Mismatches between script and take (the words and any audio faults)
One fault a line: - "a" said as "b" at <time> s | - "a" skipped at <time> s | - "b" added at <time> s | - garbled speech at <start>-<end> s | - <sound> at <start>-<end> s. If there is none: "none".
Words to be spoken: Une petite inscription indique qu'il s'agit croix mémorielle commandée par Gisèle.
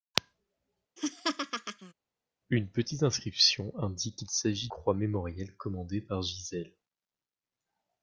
- laugh at 1.0-1.9 s